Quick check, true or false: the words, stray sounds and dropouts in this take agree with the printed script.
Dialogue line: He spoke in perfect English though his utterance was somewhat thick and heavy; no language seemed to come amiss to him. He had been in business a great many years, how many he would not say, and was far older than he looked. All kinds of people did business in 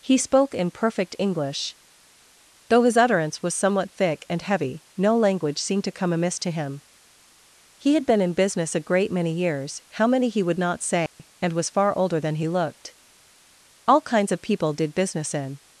false